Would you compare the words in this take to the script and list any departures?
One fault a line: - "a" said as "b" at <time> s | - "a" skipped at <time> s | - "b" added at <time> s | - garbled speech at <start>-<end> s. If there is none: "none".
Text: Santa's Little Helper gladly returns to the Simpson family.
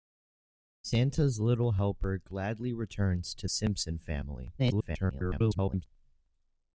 - "the" skipped at 3.5 s
- garbled speech at 4.6-5.8 s